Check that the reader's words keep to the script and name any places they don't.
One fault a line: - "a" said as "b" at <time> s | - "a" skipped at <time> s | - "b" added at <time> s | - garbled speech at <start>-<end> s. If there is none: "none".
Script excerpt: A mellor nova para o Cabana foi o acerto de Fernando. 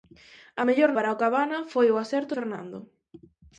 - "nova" skipped at 0.9 s
- "de" skipped at 2.3 s